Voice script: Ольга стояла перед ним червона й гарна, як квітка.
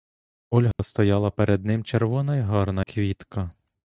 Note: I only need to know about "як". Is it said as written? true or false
false